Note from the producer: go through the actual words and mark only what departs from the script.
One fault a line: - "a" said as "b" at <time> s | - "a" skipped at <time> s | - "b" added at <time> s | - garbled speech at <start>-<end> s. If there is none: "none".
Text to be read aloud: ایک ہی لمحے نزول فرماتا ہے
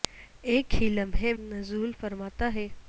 none